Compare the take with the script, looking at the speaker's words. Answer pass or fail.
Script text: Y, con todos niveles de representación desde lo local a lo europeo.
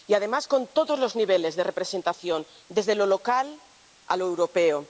fail